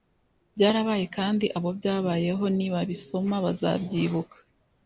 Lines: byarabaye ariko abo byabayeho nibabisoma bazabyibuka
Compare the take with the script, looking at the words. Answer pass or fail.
fail